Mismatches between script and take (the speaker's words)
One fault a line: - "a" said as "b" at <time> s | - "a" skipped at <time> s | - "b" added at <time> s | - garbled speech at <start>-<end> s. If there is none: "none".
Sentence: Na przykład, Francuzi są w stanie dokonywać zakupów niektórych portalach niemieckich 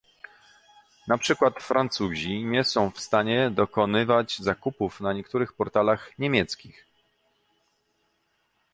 - "nie" added at 2.4 s
- "na" added at 5.0 s